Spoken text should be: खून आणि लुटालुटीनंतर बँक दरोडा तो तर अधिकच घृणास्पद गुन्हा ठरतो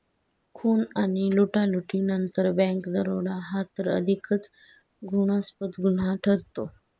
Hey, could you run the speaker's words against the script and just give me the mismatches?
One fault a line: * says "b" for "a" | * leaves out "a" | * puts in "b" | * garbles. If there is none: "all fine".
* says "हा" for "तो"